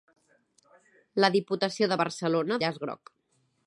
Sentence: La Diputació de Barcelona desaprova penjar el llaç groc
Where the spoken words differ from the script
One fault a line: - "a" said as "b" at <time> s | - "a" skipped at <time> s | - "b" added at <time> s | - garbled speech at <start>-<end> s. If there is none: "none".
- "desaprova penjar el" skipped at 2.6 s